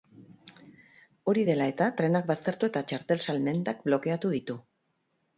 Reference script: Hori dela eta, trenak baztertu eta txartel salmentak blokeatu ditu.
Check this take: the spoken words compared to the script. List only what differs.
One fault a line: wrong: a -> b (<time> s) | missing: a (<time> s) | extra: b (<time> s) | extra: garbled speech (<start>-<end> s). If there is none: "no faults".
no faults